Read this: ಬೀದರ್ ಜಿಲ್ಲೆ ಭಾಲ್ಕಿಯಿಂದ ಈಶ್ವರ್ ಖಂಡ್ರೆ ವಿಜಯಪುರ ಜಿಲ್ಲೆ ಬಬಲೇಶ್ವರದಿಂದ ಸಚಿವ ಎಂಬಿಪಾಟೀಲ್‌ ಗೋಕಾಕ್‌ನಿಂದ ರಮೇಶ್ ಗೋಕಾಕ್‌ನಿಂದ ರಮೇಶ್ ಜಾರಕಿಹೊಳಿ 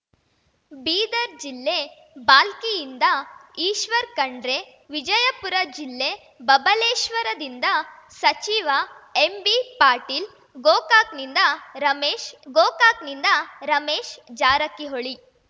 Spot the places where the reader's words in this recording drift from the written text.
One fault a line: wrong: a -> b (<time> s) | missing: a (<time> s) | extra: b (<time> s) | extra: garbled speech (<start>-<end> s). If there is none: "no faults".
no faults